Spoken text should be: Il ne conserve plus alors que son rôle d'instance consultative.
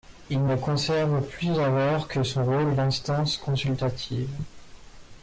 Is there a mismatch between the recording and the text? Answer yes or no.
no